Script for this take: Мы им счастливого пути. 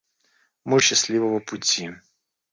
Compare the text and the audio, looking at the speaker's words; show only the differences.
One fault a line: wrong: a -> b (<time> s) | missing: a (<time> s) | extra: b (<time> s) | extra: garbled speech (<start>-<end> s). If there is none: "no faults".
no faults